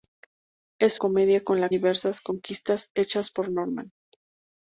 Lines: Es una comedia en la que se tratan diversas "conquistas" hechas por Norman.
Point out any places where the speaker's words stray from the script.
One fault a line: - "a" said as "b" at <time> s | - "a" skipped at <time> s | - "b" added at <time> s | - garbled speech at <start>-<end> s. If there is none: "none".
- "una" skipped at 1.0 s
- "que se tratan" skipped at 1.7 s